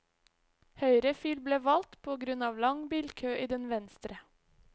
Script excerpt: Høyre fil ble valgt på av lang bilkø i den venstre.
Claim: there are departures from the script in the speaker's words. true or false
true